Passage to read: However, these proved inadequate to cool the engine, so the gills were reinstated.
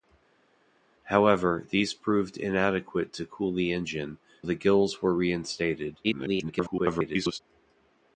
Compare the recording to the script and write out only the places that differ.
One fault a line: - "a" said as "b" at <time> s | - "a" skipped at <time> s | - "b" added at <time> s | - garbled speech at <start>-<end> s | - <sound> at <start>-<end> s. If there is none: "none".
- "so" skipped at 4.2 s
- garbled speech at 6.0-7.4 s